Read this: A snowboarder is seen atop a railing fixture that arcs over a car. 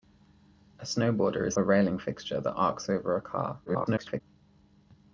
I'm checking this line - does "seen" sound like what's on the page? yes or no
no